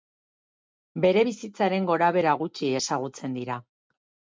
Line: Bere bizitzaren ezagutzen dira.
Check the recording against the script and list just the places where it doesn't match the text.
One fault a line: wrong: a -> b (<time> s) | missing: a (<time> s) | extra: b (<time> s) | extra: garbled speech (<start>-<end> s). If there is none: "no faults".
extra: gorabehera gutxi (1.9 s)